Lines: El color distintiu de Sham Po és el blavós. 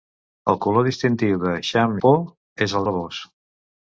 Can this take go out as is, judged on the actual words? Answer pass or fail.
pass